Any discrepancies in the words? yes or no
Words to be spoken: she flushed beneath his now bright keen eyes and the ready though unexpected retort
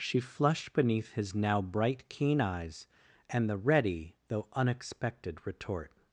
no